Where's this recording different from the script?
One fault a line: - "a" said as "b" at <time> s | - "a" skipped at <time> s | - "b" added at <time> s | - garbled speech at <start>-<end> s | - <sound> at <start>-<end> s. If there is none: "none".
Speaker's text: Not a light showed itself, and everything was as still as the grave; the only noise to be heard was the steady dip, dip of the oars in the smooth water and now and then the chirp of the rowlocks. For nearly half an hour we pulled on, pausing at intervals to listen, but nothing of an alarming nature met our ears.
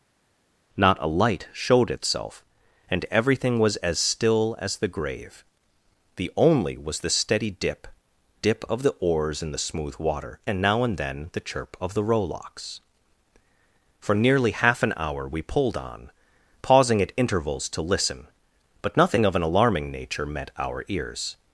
- "noise to be heard" skipped at 6.8 s